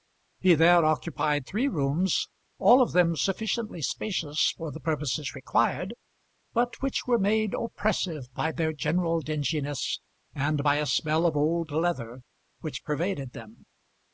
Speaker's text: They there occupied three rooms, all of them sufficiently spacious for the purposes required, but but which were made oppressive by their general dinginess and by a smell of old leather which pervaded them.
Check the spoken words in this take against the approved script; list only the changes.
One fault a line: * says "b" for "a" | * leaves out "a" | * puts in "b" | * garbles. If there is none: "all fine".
* says "He" for "They"
* leaves out "but"